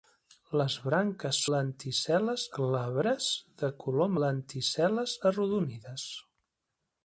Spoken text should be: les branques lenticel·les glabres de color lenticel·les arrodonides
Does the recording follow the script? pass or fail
pass